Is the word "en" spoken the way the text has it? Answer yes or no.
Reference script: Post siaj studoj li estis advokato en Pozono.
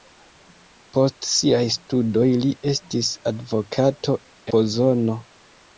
no